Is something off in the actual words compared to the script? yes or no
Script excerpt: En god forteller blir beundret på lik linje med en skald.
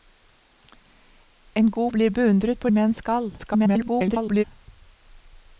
yes